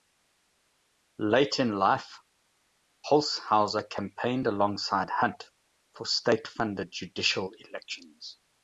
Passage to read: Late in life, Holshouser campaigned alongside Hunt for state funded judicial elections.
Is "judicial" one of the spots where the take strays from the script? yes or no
no